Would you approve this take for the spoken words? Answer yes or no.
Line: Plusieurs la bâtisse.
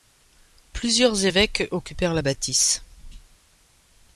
no